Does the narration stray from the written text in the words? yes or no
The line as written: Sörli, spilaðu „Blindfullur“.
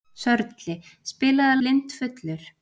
no